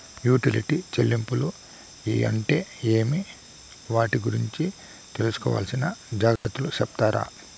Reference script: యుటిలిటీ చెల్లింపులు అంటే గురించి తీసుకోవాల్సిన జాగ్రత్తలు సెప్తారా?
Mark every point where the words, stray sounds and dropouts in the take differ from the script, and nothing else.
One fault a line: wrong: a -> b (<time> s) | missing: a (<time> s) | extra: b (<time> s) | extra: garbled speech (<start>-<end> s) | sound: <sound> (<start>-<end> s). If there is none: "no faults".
extra: ఏమి వాటి (2.9 s)
sound: dropout (6.4-6.4 s)